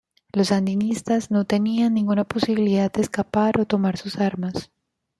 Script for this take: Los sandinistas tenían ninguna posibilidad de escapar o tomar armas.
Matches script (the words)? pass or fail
fail